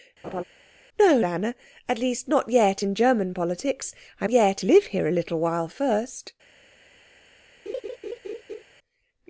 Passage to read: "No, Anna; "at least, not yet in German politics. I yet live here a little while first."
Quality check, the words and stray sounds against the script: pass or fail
fail